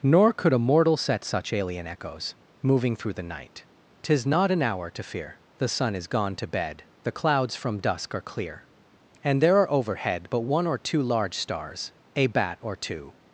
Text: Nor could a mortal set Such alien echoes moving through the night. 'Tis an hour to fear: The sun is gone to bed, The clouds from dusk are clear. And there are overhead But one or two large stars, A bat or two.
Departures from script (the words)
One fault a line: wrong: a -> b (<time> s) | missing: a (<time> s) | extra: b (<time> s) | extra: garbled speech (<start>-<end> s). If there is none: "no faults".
extra: not (4.2 s)